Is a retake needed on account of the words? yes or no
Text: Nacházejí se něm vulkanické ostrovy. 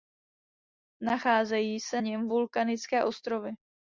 no